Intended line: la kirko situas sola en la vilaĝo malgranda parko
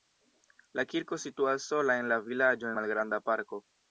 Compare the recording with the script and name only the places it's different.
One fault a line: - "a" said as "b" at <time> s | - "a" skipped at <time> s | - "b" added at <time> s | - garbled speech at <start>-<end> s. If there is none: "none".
none